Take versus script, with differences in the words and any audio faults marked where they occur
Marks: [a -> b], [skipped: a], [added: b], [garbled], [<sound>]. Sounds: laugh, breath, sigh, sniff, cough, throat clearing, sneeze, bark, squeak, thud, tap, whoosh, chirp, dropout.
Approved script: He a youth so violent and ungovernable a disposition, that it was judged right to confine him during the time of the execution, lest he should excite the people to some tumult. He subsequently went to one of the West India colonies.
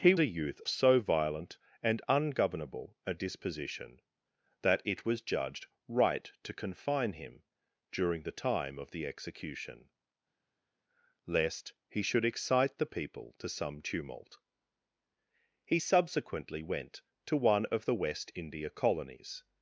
He a youth so violent and ungovernable a disposition, that it was judged right to confine him during the time of the execution, lest he should excite the people to some tumult. He subsequently went to one of the West India colonies.